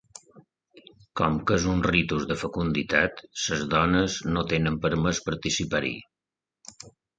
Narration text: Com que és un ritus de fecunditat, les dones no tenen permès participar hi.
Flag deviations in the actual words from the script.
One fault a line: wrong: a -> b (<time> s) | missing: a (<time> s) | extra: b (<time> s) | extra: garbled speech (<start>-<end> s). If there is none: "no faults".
no faults